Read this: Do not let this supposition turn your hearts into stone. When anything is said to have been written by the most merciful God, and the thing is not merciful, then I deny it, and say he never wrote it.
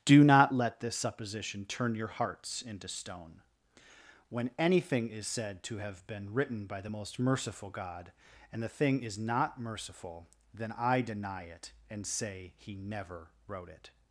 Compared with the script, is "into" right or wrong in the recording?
right